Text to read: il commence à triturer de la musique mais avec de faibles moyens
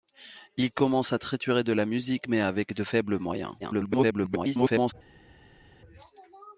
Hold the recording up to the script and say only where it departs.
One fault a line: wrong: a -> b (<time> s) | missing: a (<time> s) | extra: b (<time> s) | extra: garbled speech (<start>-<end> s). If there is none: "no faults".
extra: garbled speech (3.6-4.9 s)